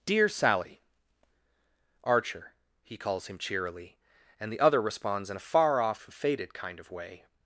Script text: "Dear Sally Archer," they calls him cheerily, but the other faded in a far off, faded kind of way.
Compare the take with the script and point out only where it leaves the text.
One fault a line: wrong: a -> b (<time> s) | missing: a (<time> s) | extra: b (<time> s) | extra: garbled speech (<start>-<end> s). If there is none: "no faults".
wrong: they -> he (2.8 s)
wrong: but -> and (4.4 s)
wrong: faded -> responds (4.8 s)